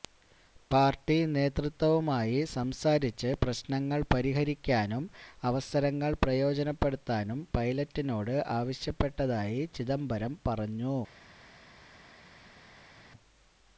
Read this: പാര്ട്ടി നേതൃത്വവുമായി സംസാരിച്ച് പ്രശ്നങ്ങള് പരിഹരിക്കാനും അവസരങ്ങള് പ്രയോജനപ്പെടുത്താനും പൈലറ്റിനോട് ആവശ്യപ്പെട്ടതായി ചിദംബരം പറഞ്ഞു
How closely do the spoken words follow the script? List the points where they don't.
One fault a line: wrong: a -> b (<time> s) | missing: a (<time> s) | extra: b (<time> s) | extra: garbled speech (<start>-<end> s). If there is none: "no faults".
no faults